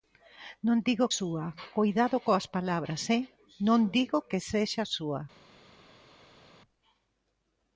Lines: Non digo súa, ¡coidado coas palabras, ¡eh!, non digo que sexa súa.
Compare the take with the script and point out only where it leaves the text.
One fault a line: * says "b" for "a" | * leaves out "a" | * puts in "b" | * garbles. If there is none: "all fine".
all fine